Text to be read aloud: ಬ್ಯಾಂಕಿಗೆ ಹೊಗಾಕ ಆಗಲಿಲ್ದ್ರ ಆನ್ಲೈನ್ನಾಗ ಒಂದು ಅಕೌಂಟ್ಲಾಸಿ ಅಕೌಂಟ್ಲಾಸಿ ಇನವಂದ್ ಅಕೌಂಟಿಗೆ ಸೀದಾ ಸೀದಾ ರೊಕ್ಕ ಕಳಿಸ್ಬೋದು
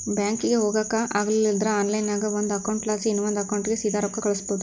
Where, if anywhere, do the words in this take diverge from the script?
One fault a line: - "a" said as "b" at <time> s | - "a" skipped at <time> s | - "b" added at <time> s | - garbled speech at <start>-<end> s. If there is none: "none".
- "ಅಕೌಂಟ್ಲಾಸಿ" skipped at 3.1 s
- "ಸೀದಾ" skipped at 4.0 s